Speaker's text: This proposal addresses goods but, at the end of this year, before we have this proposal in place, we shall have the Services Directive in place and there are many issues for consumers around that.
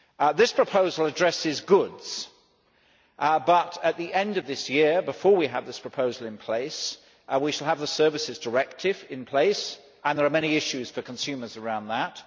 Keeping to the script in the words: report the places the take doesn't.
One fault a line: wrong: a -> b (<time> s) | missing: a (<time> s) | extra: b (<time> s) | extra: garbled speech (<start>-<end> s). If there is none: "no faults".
no faults